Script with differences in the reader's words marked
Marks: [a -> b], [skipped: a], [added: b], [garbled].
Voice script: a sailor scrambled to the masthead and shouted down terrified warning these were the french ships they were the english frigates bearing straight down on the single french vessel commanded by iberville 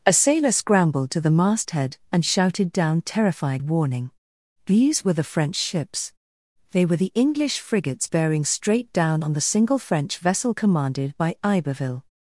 a sailor scrambled to the masthead and shouted down terrified warning these were the french ships they were the english frigates bearing straight down on the single french vessel commanded by iberville